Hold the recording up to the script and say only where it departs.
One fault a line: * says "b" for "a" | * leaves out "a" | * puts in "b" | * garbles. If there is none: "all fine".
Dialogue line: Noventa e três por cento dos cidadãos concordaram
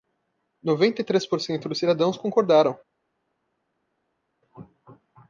all fine